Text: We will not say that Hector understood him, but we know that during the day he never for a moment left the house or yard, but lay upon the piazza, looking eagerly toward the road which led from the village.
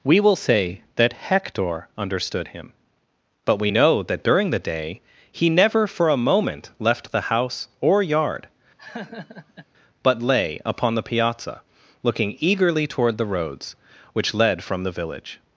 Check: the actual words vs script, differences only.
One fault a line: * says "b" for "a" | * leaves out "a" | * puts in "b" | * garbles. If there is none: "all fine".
* leaves out "not"
* says "roads" for "road"